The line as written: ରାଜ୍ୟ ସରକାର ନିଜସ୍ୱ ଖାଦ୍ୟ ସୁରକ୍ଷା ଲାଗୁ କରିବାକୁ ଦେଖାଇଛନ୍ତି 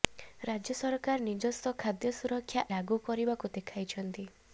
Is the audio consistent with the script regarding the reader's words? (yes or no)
yes